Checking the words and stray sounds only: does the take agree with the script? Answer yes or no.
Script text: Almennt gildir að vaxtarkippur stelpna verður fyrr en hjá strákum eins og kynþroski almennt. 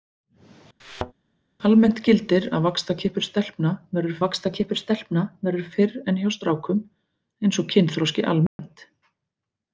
no